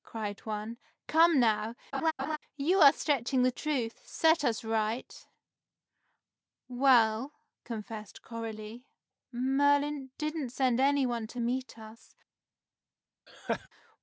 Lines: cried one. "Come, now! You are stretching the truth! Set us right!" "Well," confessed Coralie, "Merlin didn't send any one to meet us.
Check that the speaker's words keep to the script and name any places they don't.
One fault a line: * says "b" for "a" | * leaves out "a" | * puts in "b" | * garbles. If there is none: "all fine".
all fine